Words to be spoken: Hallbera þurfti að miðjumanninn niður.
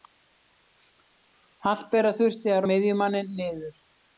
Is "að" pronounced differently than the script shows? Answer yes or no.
no